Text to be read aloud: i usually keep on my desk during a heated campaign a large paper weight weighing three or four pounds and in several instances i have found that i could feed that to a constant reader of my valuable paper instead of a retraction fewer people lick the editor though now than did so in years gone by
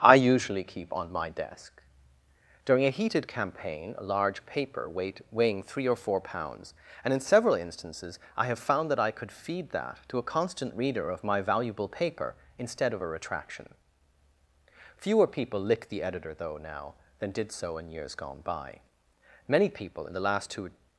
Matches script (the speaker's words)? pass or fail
fail